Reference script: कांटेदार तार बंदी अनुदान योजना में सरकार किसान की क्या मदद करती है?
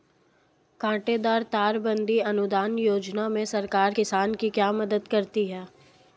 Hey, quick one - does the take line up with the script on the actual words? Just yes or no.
yes